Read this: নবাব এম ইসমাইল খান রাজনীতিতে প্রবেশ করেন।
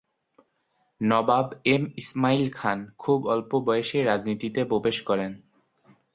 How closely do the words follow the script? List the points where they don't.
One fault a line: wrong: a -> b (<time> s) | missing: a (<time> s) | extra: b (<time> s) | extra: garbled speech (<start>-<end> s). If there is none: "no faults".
extra: খুব অল্প বয়সেই (3.0 s)